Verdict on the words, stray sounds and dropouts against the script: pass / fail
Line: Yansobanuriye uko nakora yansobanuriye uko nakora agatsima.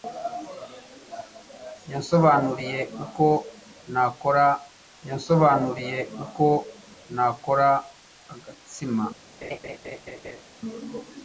fail